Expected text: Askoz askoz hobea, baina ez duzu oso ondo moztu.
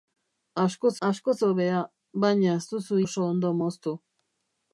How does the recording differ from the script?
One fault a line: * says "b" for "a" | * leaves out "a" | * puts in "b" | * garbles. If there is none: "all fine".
all fine